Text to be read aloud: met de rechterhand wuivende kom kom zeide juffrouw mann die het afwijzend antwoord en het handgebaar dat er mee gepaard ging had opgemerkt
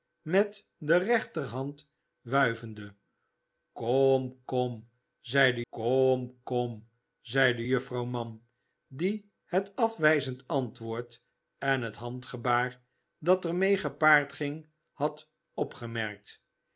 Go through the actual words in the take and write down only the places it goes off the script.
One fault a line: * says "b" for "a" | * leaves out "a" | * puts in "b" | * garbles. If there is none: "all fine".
* puts in "kom kom zeide"